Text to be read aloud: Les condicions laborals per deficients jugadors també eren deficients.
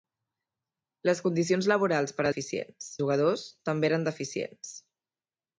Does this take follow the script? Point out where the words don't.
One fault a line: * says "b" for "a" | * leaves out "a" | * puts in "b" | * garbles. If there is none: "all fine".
all fine